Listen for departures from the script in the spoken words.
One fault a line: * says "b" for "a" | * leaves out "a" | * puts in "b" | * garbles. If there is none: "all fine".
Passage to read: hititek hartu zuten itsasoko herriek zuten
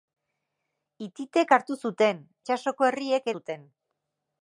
all fine